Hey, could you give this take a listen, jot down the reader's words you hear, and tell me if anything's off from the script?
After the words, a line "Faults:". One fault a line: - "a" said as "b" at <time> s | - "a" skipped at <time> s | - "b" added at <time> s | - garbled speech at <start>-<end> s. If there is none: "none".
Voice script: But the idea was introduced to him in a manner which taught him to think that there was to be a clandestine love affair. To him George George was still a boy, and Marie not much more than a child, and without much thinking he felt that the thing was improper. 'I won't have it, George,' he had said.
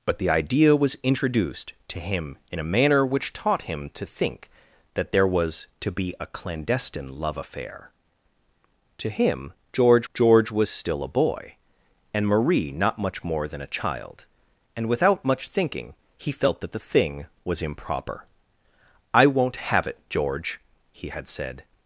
But the idea was introduced to him in a manner which taught him to think that there was to be a clandestine love affair. To him George George was still a boy, and Marie not much more than a child, and without much thinking he felt that the thing was improper. 'I won't have it, George,' he had said.
Faults:
none